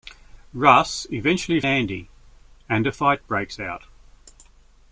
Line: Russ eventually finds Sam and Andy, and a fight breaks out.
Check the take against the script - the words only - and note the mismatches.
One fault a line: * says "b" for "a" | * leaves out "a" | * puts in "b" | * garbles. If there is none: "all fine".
* leaves out "finds Sam and"